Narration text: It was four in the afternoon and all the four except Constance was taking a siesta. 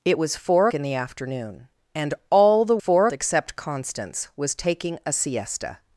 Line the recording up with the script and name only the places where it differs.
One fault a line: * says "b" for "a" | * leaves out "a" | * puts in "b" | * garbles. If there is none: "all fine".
all fine